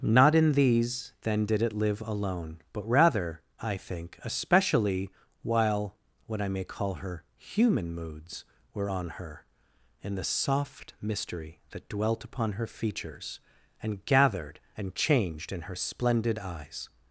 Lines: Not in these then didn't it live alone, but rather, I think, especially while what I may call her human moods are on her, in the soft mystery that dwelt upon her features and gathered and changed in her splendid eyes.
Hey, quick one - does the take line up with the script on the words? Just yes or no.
no